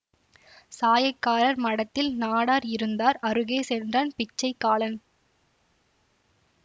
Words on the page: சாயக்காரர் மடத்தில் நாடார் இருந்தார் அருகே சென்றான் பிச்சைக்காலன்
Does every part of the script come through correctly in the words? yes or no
yes